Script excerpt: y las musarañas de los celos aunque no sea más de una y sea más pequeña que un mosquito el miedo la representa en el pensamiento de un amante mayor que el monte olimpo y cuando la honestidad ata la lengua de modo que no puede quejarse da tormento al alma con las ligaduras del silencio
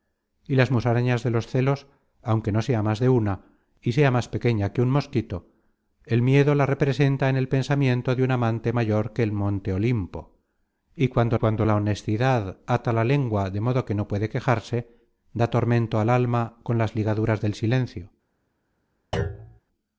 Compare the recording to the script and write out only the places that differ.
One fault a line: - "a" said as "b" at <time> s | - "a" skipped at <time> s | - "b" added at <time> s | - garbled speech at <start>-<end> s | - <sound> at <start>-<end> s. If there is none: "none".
- "cuando" added at 11.3 s
- thud at 19.1-19.6 s